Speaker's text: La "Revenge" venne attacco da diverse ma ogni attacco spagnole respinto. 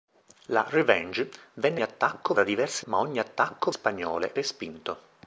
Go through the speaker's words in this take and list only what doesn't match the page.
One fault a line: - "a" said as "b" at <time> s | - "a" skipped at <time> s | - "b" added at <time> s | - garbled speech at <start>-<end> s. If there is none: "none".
none